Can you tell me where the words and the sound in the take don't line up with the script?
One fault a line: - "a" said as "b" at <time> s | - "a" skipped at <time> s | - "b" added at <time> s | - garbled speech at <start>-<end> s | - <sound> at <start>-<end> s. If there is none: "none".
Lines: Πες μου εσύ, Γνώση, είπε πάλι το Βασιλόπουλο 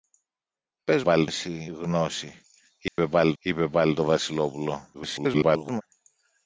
- "μου" said as "πάλι" at 1.0 s
- dropout at 2.9-3.0 s
- "είπε πάλι" added at 3.4 s
- garbled speech at 4.9-5.8 s